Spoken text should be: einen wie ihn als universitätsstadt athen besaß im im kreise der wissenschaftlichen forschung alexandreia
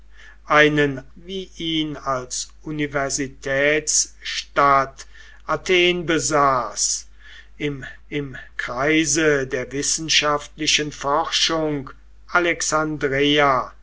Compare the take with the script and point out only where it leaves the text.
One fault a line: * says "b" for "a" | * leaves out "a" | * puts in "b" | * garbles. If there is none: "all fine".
all fine